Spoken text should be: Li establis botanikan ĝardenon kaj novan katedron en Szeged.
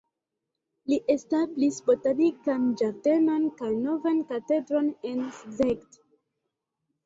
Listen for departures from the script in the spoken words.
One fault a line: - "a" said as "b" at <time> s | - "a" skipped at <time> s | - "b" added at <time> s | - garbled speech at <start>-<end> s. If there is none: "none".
none